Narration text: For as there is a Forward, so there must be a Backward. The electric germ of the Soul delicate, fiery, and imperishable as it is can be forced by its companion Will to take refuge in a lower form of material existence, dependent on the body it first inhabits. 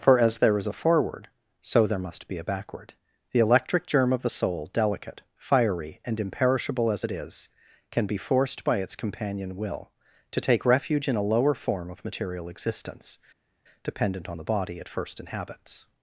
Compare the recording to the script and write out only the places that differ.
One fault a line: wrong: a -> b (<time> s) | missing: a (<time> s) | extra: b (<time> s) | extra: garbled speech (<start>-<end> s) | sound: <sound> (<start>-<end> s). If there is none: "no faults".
no faults